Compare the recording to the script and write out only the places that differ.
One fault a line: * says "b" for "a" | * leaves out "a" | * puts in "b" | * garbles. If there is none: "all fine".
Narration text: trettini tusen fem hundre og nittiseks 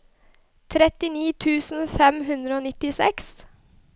all fine